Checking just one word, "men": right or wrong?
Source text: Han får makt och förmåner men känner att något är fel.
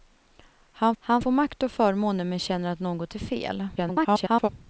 right